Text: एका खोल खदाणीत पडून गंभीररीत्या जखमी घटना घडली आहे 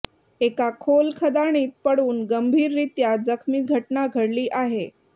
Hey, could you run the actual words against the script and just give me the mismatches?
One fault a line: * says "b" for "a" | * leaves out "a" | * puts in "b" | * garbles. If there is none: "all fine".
all fine